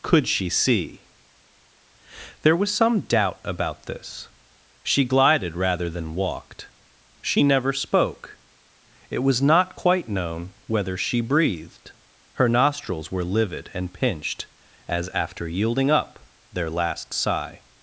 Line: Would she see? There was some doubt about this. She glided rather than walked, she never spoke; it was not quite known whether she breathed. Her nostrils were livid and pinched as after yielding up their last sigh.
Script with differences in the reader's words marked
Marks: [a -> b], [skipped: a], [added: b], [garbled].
[Would -> Could] she see? There was some doubt about this. She glided rather than walked, she never spoke; it was not quite known whether she breathed. Her nostrils were livid and pinched as after yielding up their last sigh.